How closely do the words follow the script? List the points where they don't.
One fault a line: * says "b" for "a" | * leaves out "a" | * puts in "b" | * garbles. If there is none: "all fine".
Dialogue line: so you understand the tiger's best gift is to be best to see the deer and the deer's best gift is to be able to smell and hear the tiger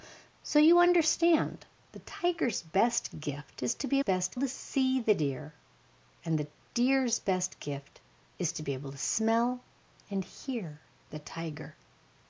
all fine